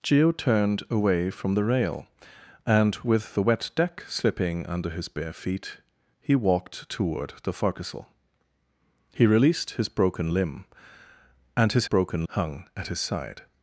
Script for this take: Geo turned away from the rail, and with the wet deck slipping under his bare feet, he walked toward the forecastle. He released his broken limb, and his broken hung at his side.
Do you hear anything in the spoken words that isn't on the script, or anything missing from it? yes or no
no